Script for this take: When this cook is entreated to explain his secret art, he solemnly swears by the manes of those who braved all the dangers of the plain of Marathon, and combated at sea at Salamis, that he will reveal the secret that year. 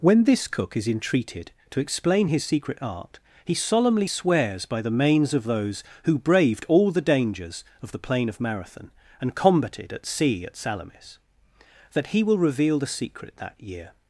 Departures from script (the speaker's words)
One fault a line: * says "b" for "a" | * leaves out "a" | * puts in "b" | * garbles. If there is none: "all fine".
all fine